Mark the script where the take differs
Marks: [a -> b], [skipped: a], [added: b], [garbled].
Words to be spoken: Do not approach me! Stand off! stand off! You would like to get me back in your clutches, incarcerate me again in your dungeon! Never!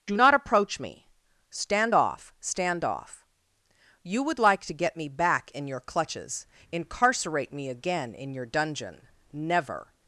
Do not approach me! Stand off! stand off! You would like to get me back in your clutches, incarcerate me again in your dungeon! Never!